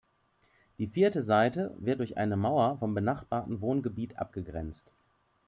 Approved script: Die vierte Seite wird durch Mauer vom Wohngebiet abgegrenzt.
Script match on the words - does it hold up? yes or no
no